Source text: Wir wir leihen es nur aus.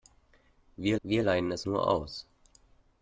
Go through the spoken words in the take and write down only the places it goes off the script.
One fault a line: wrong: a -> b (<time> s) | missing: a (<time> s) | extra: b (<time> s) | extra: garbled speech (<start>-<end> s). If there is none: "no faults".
no faults